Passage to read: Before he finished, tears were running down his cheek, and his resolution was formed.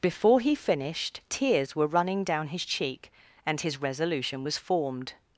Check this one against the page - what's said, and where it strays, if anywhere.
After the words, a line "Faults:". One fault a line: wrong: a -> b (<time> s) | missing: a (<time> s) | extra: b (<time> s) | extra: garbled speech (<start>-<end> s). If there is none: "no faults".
Before he finished, tears were running down his cheek, and his resolution was formed.
Faults:
no faults